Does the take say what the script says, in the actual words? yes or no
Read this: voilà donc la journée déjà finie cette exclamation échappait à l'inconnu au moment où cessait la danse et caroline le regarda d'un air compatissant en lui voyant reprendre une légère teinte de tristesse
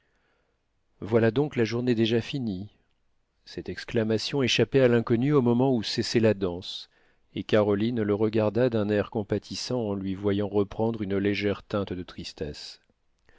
yes